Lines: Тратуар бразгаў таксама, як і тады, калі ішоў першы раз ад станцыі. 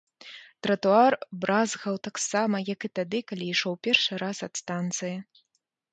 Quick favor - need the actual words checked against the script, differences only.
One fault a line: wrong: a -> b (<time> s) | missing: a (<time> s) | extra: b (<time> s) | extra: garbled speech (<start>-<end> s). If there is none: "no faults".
no faults